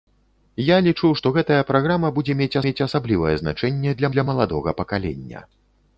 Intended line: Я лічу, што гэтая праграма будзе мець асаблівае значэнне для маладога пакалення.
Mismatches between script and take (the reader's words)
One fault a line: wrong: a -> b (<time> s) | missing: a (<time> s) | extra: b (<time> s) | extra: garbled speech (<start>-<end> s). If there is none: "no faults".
extra: мець (2.7 s)
extra: для (4.1 s)